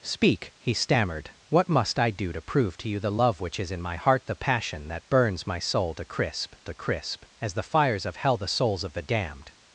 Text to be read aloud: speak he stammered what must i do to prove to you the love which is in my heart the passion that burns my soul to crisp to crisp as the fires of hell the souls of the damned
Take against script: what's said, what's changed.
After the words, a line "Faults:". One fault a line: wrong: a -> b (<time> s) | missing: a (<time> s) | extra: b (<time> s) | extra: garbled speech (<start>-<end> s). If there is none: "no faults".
speak he stammered what must i do to prove to you the love which is in my heart the passion that burns my soul to crisp to crisp as the fires of hell the souls of the damned
Faults:
no faults